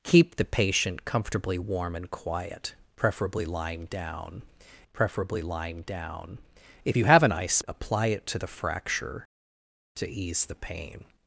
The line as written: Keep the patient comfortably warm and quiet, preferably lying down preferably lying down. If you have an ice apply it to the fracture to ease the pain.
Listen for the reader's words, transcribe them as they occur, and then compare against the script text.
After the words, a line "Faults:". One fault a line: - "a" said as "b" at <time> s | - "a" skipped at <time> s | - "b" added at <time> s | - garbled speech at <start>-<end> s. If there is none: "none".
Keep the patient comfortably warm and quiet, preferably lying down preferably lying down. If you have an ice apply it to the fracture to ease the pain.
Faults:
none